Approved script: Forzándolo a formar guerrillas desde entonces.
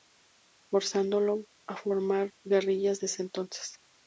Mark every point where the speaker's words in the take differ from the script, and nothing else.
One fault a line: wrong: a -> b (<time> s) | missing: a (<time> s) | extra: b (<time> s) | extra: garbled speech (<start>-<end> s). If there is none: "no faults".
no faults